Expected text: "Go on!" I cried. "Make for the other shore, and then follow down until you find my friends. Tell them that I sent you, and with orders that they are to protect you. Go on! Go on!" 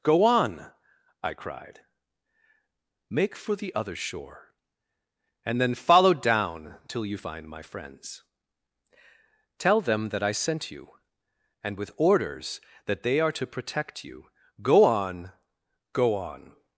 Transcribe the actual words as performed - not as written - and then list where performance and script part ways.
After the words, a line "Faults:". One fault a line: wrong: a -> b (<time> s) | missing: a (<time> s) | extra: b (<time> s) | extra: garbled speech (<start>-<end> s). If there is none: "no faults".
"Go on!" I cried. "Make for the other shore, and then follow down till you find my friends. Tell them that I sent you, and with orders that they are to protect you. Go on! Go on!"
Faults:
wrong: until -> till (6.9 s)